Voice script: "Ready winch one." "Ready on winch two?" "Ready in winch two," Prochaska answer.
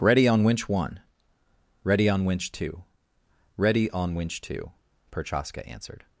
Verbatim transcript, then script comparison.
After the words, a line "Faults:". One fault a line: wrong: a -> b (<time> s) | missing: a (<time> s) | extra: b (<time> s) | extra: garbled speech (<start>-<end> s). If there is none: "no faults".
"Ready on winch one." "Ready on winch two?" "Ready on winch two," Prochaska answered.
Faults:
extra: on (0.3 s)
wrong: in -> on (3.9 s)
wrong: answer -> answered (5.7 s)